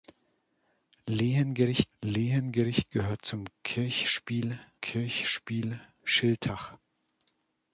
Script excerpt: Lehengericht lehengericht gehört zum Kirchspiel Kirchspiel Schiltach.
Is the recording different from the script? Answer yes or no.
no